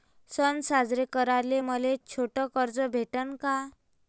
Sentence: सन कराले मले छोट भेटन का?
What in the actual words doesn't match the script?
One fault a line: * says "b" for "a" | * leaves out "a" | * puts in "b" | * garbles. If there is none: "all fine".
* puts in "साजरे"
* puts in "कर्ज"